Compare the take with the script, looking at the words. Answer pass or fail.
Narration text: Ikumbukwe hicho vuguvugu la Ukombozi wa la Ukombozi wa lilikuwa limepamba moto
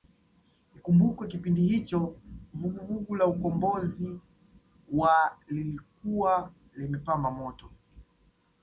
fail